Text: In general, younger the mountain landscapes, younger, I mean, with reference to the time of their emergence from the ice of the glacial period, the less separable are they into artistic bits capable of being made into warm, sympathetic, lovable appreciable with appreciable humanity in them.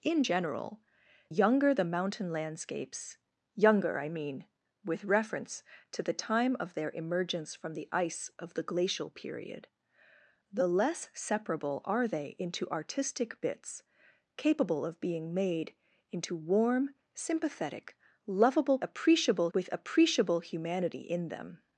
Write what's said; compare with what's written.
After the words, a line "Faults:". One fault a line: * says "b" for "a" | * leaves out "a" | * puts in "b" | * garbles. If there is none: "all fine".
In general, younger the mountain landscapes, younger, I mean, with reference to the time of their emergence from the ice of the glacial period, the less separable are they into artistic bits capable of being made into warm, sympathetic, lovable appreciable with appreciable humanity in them.
Faults:
all fine